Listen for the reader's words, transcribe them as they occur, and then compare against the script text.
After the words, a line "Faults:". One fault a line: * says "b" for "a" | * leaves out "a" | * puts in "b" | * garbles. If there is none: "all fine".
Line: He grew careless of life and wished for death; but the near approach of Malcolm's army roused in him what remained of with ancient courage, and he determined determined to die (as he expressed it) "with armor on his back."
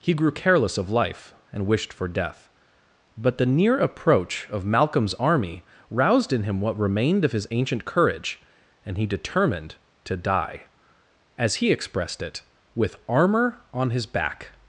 He grew careless of life and wished for death; but the near approach of Malcolm's army roused in him what remained of his ancient courage, and he determined to die (as he expressed it) "with armor on his back."
Faults:
* says "his" for "with"
* leaves out "determined"